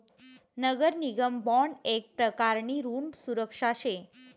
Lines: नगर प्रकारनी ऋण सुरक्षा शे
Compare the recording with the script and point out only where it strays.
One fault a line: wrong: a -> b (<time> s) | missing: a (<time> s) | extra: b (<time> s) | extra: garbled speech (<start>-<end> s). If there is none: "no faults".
extra: निगम बॉन्ड येक (1.0 s)